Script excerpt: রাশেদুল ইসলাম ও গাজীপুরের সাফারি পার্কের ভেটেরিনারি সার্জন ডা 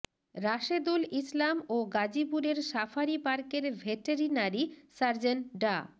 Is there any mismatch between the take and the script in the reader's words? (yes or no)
no